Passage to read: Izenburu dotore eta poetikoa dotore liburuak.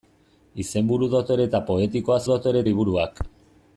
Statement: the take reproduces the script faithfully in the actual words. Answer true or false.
true